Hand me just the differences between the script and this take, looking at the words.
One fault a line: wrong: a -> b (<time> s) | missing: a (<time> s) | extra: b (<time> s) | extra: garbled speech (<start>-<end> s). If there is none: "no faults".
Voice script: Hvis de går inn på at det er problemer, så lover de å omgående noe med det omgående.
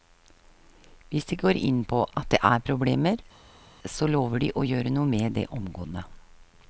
wrong: omgående -> gjøre (4.7 s)